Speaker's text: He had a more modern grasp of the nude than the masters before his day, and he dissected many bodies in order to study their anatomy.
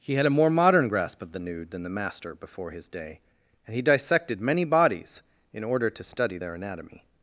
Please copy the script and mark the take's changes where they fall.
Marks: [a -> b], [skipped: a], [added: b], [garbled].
He had a more modern grasp of the nude than the [masters -> master] before his day, and he dissected many bodies in order to study their anatomy.